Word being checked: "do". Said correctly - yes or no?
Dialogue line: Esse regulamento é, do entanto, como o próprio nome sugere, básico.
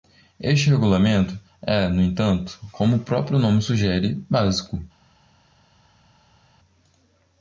no